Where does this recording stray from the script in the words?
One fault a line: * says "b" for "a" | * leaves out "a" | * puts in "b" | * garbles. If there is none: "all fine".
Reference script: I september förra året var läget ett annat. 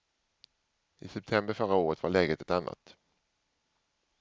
all fine